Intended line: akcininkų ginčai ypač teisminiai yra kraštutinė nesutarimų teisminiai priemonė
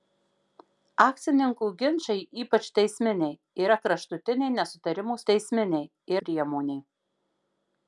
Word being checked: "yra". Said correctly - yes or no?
yes